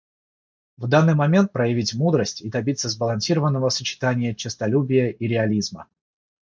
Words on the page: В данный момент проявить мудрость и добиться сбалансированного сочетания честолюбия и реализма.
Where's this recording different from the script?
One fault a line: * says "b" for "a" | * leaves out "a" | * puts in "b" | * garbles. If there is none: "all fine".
all fine